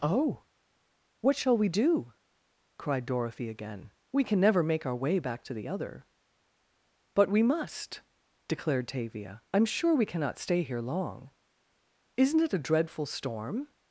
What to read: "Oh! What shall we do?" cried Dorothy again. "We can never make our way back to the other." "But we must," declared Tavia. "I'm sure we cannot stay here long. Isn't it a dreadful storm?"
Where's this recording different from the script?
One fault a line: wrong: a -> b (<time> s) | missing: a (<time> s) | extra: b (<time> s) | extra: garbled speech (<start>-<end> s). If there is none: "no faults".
no faults